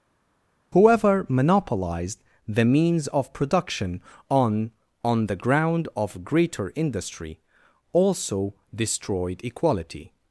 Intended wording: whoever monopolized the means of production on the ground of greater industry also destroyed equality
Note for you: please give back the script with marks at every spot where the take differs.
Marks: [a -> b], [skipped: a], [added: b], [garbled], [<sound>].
whoever monopolized the means of production on [added: on] the ground of greater industry also destroyed equality